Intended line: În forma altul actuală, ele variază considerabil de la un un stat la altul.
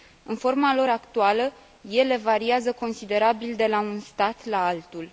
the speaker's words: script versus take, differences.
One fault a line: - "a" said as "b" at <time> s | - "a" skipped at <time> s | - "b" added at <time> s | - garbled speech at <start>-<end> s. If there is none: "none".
- "altul" said as "lor" at 0.8 s
- "un" skipped at 4.0 s